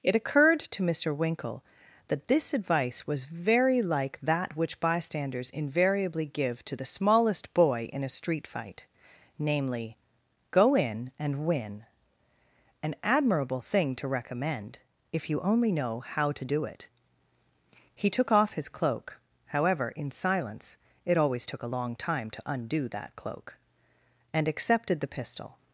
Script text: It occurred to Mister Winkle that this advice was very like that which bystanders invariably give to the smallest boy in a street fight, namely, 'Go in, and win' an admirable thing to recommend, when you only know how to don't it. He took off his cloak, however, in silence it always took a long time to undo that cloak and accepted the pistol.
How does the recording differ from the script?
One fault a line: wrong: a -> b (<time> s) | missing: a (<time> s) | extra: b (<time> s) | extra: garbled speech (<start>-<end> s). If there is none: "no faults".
wrong: when -> if (15.1 s)
wrong: don't -> do (16.4 s)